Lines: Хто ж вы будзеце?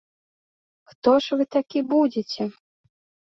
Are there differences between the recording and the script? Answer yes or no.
yes